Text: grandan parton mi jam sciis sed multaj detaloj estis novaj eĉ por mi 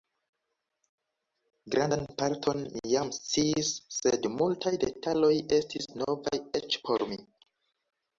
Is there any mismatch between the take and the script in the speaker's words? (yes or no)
no